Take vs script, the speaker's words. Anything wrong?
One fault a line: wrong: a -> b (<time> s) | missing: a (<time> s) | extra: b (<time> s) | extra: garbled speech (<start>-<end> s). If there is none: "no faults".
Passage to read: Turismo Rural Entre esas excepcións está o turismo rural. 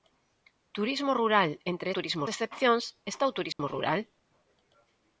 wrong: esas -> turismo (2.0 s)